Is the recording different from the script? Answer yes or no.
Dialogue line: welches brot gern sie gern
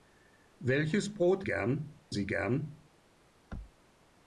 no